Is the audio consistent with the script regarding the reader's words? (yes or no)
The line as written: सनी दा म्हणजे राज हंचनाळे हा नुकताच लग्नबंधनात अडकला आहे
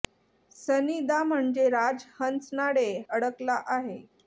no